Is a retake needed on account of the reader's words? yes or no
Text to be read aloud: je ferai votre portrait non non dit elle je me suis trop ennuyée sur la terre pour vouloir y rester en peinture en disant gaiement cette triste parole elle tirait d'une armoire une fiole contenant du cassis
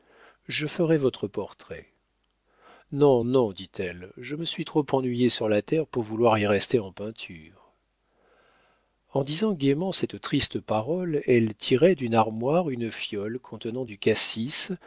no